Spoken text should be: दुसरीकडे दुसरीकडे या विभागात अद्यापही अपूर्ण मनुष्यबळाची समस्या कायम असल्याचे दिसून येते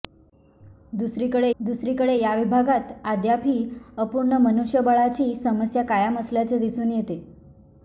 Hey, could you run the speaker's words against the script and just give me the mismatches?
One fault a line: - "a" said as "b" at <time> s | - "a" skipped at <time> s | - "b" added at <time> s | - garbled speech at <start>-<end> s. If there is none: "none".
none